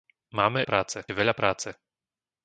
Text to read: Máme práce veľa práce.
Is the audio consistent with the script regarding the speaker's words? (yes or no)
yes